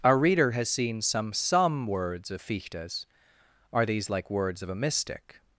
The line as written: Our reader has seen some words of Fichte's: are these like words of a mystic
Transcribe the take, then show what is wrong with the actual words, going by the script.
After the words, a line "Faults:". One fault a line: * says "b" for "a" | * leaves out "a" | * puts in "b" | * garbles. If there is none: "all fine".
Our reader has seen some some words of Fichte's: are these like words of a mystic
Faults:
* puts in "some"